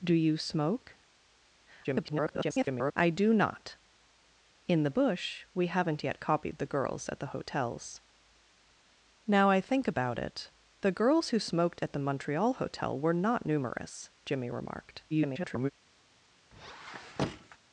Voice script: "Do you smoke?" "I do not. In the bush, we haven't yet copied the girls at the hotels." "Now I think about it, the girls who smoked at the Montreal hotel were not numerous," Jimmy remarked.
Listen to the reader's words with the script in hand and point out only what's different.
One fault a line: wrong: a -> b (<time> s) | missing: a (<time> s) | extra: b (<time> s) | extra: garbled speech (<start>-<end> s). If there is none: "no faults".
extra: garbled speech (1.8-2.9 s)
extra: garbled speech (15.1-15.7 s)